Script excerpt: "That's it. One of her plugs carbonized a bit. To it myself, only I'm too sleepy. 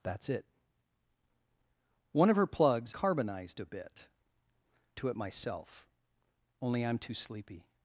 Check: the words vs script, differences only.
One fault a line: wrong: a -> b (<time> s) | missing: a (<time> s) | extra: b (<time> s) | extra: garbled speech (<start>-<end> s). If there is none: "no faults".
no faults